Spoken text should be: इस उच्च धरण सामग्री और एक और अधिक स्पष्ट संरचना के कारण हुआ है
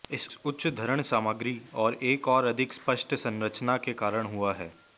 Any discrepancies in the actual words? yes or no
no